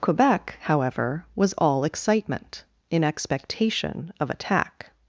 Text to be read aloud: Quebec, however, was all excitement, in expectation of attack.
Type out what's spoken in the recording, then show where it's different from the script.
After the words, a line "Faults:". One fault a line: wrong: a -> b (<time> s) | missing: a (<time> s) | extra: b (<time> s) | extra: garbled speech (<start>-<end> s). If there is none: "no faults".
Quebec, however, was all excitement, in expectation of attack.
Faults:
no faults